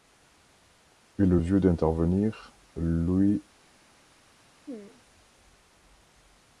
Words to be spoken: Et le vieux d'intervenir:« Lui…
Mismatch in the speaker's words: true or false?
false